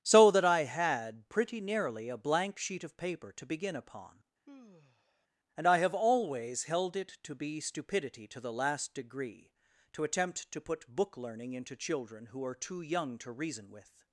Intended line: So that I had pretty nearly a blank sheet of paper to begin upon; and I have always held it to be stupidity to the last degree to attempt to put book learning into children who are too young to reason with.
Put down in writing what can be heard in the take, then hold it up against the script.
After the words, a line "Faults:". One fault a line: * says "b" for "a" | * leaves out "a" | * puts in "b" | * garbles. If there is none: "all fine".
So that I had pretty nearly a blank sheet of paper to begin upon; and I have always held it to be stupidity to the last degree to attempt to put book learning into children who are too young to reason with.
Faults:
all fine